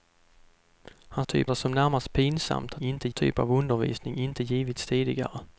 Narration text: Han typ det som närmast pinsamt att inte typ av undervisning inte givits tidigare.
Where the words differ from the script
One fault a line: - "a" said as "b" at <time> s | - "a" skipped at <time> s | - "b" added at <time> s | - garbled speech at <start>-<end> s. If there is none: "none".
none